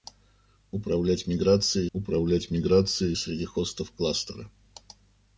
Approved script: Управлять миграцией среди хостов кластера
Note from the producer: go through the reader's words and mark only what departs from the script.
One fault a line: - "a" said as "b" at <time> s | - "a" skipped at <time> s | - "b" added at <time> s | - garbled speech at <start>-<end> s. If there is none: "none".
- "управлять миграцией" added at 1.9 s